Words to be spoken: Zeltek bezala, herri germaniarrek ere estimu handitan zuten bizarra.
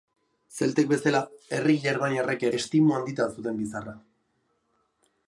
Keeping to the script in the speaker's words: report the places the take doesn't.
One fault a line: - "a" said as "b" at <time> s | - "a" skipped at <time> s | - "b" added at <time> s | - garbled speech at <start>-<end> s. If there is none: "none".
- "ere" skipped at 2.5 s